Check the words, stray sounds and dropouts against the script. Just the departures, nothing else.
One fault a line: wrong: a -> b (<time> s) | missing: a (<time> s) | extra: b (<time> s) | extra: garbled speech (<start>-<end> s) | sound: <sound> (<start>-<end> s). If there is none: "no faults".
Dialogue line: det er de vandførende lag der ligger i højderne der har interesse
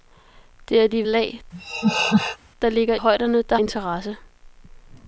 missing: vandførende (1.1 s)
sound: laugh (1.5-2.4 s)
missing: i (3.0 s)
missing: har (3.6 s)